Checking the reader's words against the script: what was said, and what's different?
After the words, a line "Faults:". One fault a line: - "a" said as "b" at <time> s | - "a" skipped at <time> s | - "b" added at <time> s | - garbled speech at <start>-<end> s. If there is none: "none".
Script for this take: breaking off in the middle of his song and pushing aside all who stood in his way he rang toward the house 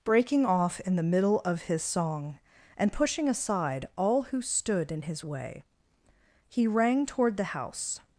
breaking off in the middle of his song and pushing aside all who stood in his way he rang toward the house
Faults:
none